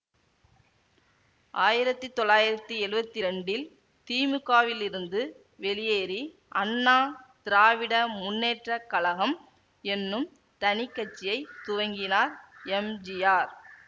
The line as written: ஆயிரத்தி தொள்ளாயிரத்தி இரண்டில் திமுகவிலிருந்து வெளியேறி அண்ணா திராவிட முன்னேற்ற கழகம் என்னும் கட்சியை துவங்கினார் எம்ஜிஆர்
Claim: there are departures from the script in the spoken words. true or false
true